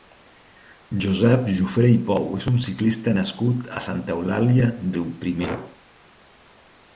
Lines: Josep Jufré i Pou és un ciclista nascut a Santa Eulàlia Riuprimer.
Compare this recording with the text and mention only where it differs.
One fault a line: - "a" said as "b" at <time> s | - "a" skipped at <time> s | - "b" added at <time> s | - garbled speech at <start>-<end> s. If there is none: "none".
none